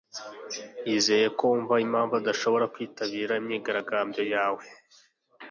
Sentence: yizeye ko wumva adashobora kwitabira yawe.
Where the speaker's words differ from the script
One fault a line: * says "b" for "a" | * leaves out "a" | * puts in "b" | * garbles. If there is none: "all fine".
* puts in "impamvu"
* puts in "imyigaragambyo"